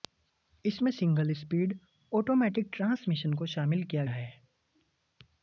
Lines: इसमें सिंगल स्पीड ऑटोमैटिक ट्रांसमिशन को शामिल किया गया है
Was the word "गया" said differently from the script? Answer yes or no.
yes